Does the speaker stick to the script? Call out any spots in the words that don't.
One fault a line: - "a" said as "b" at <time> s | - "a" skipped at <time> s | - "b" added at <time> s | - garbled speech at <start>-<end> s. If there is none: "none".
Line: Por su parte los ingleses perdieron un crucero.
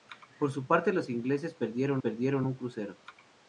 - "perdieron" added at 2.0 s